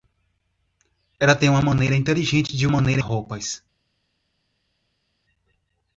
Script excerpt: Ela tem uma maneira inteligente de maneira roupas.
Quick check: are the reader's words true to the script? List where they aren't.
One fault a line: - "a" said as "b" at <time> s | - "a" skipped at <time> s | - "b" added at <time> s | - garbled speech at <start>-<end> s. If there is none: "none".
none